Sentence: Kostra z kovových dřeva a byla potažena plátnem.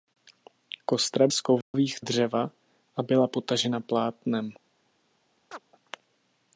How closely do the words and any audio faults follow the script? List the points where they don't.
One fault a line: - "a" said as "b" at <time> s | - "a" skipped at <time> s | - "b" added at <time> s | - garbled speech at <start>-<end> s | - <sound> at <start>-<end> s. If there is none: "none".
- dropout at 1.6-1.7 s
- chirp at 5.5-5.6 s